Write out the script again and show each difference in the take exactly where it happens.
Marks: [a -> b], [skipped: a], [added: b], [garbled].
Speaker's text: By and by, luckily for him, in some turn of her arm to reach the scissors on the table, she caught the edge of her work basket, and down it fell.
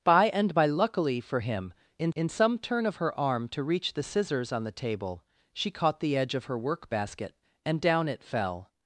By and by, luckily for him, in [added: in] some turn of her arm to reach the scissors on the table, she caught the edge of her work basket, and down it fell.